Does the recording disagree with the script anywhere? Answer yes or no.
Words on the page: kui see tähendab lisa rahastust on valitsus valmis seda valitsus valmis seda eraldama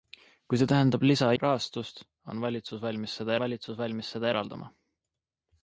no